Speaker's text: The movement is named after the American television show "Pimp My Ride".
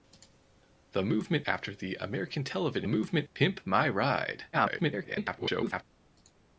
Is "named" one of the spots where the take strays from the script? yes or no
yes